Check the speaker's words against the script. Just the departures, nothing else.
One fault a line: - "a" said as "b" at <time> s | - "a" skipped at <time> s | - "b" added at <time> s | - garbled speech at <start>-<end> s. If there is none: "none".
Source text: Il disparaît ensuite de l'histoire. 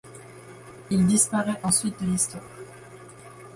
none